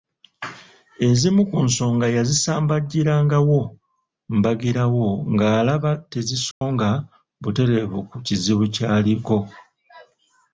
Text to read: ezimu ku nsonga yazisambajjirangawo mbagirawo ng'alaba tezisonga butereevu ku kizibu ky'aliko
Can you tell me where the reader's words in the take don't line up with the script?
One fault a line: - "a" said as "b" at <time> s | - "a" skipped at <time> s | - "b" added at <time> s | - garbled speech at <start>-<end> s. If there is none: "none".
none